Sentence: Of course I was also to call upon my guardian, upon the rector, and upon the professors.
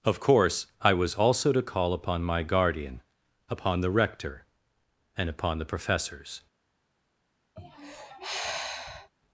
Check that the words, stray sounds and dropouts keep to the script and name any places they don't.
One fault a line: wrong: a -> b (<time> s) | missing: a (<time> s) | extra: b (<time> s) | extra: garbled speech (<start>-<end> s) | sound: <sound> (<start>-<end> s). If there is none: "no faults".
sound: sigh (7.6-9.1 s)